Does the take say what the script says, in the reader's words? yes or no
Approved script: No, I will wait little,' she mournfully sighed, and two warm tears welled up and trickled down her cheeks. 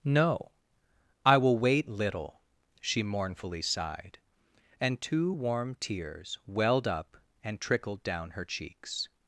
yes